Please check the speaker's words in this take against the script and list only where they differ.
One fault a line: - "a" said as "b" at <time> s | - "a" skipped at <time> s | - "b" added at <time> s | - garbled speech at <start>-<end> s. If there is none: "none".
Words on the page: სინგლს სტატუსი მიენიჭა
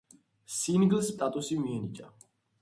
none